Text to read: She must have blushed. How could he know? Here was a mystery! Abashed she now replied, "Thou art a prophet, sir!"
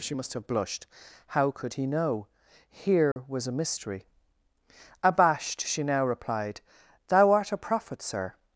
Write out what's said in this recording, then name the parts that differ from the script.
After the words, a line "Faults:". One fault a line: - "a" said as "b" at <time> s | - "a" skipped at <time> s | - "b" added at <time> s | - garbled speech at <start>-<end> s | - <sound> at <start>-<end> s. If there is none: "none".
She must have blushed. How could he know? Here was a mystery! Abashed she now replied, "Thou art a prophet, sir!"
Faults:
- dropout at 3.1-3.2 s